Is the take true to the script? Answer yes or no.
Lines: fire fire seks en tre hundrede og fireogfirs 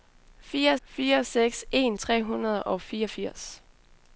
yes